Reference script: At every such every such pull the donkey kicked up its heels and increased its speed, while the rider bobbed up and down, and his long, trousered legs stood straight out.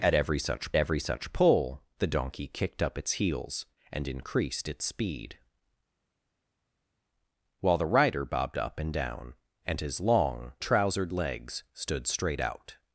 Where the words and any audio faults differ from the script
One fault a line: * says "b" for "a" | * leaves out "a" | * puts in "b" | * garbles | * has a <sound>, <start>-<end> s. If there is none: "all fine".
all fine